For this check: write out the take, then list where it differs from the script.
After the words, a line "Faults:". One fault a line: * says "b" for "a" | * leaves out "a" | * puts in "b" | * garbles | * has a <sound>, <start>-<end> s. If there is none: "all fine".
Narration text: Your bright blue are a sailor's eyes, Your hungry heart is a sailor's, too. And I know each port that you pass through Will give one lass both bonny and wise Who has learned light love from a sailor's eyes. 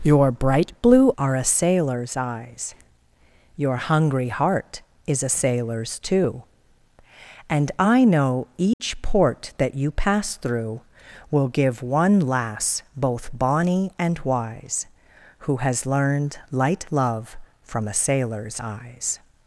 Your bright blue are a sailor's eyes, Your hungry heart is a sailor's, too. And I know each port that you pass through Will give one lass both bonny and wise Who has learned light love from a sailor's eyes.
Faults:
* has a dropout, 8.7-8.8 s